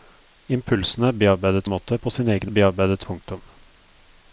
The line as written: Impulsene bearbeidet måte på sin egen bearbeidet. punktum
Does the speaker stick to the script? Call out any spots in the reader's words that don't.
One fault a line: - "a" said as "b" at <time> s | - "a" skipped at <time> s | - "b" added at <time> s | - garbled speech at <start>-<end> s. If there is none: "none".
none